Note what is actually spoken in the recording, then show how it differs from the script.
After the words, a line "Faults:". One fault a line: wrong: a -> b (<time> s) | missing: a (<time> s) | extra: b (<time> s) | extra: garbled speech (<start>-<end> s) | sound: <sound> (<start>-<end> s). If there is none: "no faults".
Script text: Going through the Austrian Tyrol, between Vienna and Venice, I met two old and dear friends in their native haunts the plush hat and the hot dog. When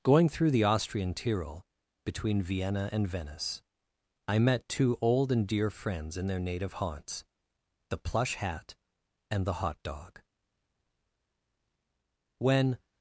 Going through the Austrian Tyrol, between Vienna and Venice, I met two old and dear friends in their native haunts the plush hat and the hot dog. When
Faults:
no faults